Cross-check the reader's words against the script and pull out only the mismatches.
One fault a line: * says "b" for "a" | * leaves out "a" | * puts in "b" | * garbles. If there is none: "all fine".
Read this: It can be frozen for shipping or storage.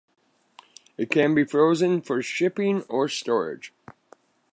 all fine